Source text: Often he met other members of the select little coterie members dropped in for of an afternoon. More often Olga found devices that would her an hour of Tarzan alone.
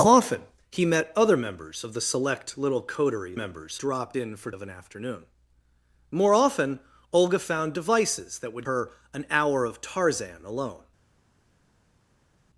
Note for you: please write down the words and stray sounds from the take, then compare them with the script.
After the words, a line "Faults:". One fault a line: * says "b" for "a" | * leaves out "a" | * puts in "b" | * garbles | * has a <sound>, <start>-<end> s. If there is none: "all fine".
Often he met other members of the select little coterie members dropped in for of an afternoon. More often Olga found devices that would her an hour of Tarzan alone.
Faults:
all fine